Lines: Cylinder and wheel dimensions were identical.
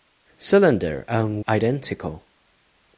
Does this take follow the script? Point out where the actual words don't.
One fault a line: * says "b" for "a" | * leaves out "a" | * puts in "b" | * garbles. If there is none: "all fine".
* leaves out "wheel dimensions were"